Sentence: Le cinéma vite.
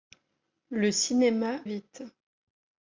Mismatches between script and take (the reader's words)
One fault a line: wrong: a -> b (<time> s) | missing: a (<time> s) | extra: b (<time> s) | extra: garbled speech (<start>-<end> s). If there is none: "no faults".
no faults